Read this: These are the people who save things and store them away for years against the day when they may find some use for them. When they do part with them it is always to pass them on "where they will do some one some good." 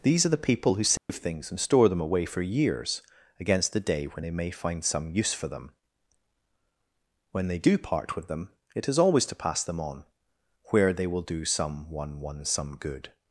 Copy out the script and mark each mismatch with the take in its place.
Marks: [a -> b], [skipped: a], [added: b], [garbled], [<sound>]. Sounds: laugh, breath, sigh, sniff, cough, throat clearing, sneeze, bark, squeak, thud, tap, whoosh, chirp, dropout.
These are the people who save [dropout] things and store them away for years against the day when they may find some use for them. When they do part with them it is always to pass them on "where they will do some one [added: one] some good."